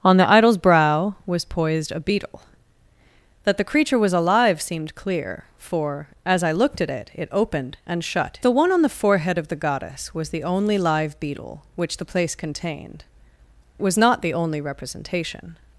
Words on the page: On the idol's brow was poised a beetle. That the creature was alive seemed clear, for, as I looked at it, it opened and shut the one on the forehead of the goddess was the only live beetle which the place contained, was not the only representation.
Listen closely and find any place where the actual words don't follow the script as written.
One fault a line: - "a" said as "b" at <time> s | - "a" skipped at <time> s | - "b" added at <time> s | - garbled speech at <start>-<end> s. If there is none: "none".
none